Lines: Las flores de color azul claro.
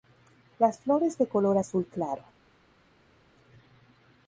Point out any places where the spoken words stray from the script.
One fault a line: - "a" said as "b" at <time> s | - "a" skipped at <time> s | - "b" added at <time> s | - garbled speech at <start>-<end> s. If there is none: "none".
none